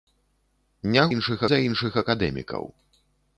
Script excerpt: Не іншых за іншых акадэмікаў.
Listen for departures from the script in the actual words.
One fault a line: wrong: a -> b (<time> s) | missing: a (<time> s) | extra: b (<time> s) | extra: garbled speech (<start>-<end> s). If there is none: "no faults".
no faults